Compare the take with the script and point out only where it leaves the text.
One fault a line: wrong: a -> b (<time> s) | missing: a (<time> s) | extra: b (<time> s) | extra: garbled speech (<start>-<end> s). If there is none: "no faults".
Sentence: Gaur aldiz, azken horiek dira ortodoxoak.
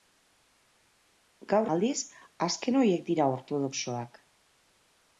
no faults